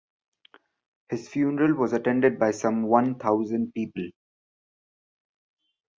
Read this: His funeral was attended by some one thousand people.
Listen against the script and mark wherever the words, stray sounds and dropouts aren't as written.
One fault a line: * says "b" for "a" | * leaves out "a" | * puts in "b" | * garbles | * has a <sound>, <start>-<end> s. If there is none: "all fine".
all fine